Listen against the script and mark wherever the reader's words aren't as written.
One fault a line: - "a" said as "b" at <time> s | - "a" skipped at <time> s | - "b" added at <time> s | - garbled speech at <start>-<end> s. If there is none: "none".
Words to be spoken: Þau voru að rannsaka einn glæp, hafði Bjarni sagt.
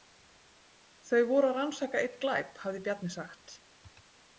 none